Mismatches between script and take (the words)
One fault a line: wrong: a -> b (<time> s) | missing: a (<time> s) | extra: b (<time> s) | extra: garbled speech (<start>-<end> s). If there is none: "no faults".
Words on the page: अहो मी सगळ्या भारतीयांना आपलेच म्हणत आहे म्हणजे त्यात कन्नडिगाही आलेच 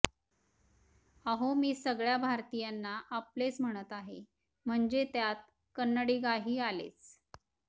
no faults